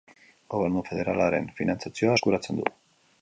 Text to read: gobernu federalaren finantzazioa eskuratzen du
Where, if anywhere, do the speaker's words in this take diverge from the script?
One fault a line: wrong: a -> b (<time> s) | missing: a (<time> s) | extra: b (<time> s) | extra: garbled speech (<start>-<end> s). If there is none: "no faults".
no faults